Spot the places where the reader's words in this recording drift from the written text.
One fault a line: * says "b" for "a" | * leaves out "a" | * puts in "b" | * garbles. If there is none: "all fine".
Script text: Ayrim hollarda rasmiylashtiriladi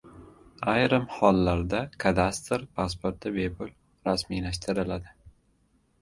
* puts in "kadastr pasporti bepul"